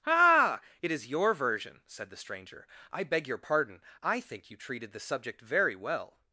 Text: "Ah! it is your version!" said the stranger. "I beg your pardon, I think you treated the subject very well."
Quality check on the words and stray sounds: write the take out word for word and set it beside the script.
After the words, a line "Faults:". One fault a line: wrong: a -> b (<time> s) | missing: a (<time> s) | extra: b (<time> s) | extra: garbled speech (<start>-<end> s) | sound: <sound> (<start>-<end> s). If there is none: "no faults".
"Ah! it is your version!" said the stranger. "I beg your pardon, I think you treated the subject very well."
Faults:
no faults